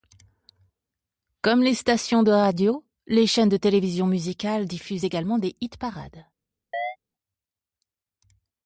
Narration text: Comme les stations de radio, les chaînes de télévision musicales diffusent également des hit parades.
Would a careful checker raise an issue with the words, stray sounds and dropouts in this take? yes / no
yes